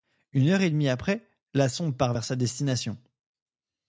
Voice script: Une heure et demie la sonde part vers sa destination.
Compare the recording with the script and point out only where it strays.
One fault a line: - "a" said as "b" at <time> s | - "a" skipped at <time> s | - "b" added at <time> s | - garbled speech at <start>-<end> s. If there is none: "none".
- "après" added at 0.9 s